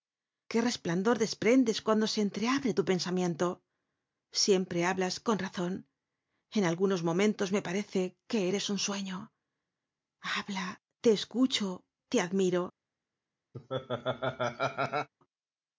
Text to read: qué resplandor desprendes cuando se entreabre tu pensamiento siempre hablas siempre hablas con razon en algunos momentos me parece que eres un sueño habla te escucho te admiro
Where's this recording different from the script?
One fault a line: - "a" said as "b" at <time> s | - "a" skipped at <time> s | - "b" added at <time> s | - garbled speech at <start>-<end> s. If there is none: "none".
- "siempre hablas" skipped at 5.1 s